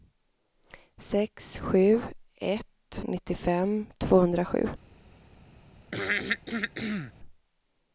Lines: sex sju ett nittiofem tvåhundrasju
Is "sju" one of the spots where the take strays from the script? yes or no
no